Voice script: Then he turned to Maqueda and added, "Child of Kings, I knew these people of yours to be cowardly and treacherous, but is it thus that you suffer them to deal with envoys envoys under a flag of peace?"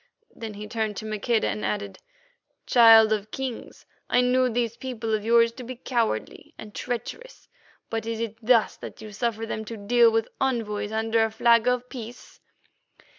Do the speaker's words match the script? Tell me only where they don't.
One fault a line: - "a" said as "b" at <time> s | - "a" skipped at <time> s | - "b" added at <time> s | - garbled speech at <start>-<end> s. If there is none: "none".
- "envoys" skipped at 10.9 s